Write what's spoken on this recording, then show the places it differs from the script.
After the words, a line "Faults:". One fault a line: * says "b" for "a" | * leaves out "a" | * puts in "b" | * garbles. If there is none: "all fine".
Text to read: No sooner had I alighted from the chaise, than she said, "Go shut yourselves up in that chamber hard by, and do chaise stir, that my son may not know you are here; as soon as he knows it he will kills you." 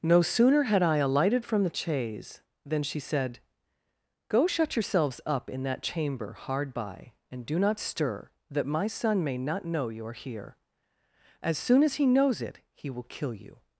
No sooner had I alighted from the chaise, than she said, "Go shut yourselves up in that chamber hard by, and do not stir, that my son may not know you are here; as soon as he knows it he will kill you."
Faults:
* says "not" for "chaise"
* says "kill" for "kills"